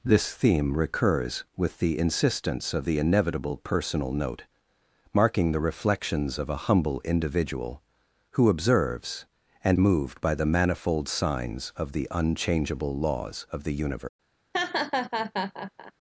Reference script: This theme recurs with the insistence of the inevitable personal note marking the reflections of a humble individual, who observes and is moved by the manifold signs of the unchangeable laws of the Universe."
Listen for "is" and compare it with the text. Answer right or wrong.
wrong